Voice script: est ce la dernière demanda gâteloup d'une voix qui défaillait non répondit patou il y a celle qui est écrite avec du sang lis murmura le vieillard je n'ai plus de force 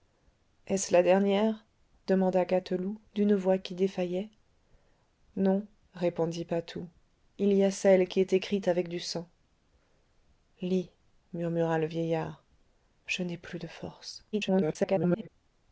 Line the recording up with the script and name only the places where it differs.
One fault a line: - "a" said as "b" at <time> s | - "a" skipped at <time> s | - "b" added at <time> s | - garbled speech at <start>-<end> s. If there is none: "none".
- garbled speech at 14.3-15.3 s